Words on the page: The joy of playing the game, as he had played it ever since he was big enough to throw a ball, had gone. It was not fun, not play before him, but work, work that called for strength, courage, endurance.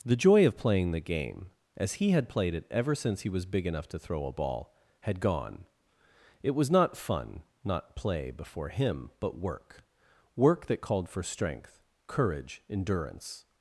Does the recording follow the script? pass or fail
pass